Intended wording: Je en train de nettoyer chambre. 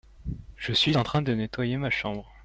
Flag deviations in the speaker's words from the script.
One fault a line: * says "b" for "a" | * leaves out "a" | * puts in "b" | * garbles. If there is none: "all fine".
* puts in "suis"
* puts in "ma"